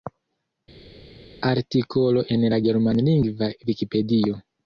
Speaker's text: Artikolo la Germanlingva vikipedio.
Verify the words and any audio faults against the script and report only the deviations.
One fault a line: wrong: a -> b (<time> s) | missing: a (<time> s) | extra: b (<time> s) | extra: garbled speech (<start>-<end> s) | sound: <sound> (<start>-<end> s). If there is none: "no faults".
extra: en (2.4 s)